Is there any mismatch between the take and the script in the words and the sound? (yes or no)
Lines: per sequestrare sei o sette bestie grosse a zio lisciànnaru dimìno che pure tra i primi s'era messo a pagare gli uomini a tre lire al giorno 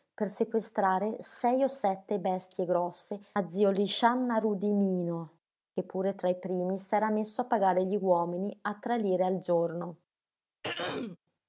yes